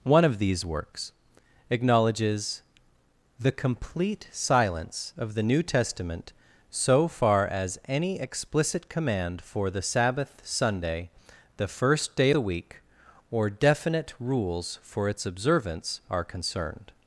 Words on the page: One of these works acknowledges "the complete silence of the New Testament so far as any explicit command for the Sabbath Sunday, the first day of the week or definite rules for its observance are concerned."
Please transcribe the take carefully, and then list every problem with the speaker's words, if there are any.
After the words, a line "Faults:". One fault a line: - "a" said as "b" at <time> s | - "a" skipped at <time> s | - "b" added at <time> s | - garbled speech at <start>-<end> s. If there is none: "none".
One of these works acknowledges "the complete silence of the New Testament so far as any explicit command for the Sabbath Sunday, the first day the week or definite rules for its observance are concerned."
Faults:
- "of" skipped at 12.3 s